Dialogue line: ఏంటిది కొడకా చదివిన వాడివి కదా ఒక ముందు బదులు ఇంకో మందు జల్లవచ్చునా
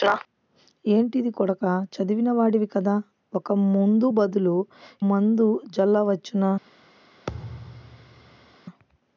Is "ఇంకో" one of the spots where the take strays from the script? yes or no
yes